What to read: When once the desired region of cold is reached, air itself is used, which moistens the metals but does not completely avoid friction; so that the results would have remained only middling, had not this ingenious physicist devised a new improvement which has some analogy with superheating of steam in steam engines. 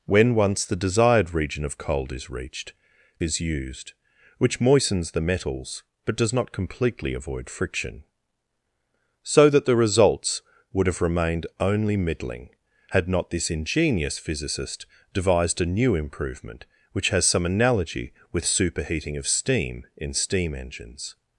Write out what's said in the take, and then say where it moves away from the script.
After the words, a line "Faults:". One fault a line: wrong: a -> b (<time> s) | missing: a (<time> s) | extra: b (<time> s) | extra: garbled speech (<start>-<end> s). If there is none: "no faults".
When once the desired region of cold is reached, is used, which moistens the metals but does not completely avoid friction; so that the results would have remained only middling, had not this ingenious physicist devised a new improvement which has some analogy with superheating of steam in steam engines.
Faults:
missing: air itself (2.7 s)